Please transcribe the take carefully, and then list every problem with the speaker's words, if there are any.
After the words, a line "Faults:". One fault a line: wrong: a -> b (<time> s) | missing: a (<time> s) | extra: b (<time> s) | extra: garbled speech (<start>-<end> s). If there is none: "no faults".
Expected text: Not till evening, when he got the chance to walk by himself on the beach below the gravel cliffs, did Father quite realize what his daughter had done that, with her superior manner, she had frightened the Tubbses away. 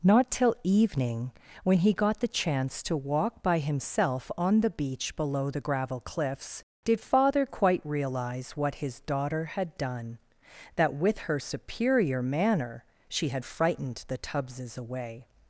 Not till evening, when he got the chance to walk by himself on the beach below the gravel cliffs, did Father quite realize what his daughter had done that, with her superior manner, she had frightened the Tubbses away.
Faults:
no faults